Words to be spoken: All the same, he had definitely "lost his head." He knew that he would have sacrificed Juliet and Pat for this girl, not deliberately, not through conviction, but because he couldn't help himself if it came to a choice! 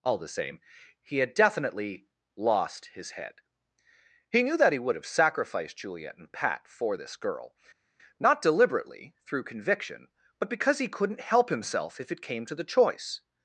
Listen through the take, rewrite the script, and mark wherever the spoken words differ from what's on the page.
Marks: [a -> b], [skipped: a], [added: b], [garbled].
All the same, he had definitely "lost his head." He knew that he would have sacrificed Juliet and Pat for this girl, not deliberately, [skipped: not] through conviction, but because he couldn't help himself if it came to [a -> the] choice!